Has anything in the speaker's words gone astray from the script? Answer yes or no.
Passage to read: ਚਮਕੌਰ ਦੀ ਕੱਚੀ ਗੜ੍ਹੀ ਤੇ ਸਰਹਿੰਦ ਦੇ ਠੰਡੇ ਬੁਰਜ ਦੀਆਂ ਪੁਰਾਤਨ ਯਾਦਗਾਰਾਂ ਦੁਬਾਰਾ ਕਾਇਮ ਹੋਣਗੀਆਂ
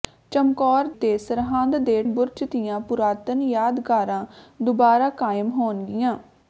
yes